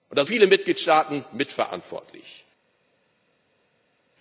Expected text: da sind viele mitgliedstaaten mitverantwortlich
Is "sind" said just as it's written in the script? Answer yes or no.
no